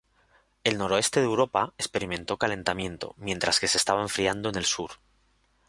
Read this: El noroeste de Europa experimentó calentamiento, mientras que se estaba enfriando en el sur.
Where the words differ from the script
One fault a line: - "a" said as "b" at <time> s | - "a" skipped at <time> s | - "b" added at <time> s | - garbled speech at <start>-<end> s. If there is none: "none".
none